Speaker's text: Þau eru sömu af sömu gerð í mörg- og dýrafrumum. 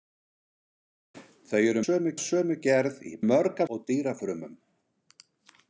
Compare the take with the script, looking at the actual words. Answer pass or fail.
pass